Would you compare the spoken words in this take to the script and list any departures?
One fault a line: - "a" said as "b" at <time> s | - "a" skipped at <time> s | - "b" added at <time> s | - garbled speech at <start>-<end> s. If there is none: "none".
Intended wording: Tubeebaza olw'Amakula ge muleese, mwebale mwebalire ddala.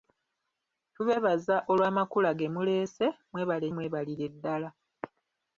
none